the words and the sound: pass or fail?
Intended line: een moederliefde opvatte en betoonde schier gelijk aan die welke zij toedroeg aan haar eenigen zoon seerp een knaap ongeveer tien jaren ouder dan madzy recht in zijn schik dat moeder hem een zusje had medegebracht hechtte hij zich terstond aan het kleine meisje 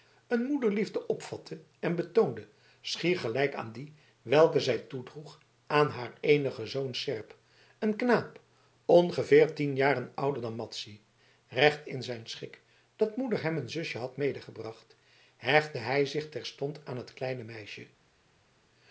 pass